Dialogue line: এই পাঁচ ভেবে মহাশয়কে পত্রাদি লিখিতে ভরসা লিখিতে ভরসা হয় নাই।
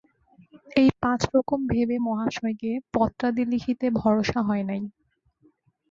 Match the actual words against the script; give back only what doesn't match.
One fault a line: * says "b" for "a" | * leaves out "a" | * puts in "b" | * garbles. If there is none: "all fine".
* puts in "রকম"
* leaves out "লিখিতে ভরসা"